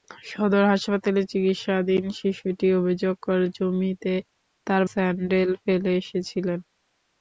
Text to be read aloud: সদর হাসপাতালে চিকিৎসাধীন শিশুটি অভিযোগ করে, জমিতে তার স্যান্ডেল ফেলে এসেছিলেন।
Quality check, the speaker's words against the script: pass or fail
pass